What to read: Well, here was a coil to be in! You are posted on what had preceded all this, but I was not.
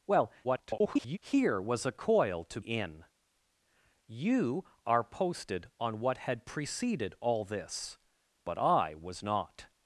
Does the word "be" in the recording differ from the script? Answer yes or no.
yes